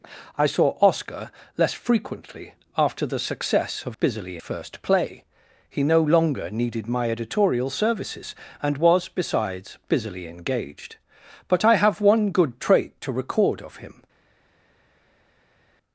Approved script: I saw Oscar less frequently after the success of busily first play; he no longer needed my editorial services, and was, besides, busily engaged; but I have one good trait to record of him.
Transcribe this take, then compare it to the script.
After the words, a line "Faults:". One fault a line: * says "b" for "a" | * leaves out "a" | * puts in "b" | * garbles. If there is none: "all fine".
I saw Oscar less frequently after the success of busily first play; he no longer needed my editorial services, and was, besides, busily engaged; but I have one good trait to record of him.
Faults:
all fine